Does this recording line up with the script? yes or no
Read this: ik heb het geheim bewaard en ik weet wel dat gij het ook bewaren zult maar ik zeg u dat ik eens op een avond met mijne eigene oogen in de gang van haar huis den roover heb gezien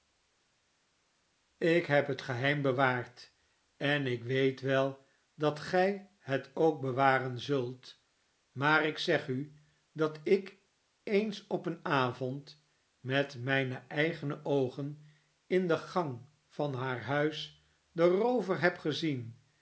yes